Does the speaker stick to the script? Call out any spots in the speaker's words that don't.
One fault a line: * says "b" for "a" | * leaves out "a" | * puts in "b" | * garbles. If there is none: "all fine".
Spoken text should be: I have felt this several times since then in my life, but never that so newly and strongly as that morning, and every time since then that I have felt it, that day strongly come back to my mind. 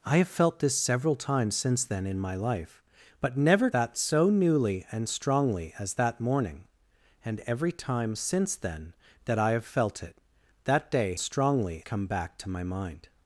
all fine